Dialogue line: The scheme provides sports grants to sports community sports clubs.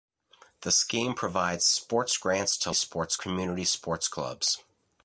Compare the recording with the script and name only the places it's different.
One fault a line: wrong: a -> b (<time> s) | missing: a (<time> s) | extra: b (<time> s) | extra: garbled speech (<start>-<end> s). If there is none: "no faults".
no faults